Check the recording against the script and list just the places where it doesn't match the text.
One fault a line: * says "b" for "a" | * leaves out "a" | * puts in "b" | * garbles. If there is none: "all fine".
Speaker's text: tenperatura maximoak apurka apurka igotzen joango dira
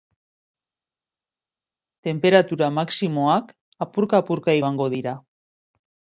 * leaves out "igotzen"